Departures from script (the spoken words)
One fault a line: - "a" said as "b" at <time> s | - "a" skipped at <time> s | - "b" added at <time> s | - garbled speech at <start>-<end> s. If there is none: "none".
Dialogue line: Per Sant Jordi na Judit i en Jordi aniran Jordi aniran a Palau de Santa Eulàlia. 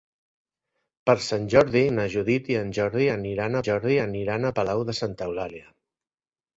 none